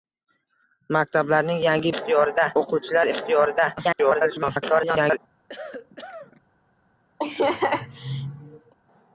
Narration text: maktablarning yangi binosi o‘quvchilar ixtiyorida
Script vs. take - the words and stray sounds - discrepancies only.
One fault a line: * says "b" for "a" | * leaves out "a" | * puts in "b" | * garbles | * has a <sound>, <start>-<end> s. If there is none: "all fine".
* says "ixtiyorida" for "binosi"
* garbles
* has a cough, 5.5-6.4 s
* has a laugh, 7.2-8.7 s